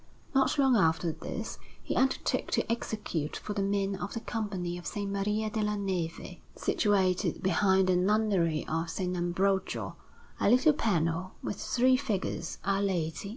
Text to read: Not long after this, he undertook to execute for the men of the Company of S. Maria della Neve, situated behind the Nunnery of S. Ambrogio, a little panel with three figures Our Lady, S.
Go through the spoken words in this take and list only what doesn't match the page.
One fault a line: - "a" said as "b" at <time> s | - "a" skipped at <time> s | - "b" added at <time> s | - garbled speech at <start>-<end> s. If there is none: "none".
none